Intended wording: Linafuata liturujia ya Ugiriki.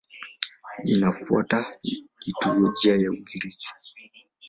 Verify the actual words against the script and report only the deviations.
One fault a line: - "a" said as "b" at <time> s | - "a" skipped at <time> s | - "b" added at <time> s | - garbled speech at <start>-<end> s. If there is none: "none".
none